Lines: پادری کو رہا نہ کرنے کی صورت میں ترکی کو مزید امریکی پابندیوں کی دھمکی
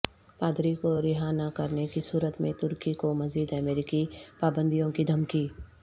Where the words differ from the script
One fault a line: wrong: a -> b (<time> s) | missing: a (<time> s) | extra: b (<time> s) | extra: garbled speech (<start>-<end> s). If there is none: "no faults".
no faults